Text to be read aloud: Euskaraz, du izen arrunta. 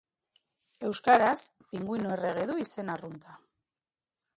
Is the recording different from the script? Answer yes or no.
yes